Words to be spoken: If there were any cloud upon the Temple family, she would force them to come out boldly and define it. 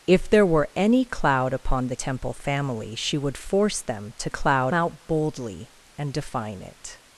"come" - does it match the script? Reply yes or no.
no